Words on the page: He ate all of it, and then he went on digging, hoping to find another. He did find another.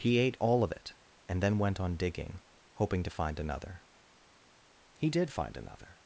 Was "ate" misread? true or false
false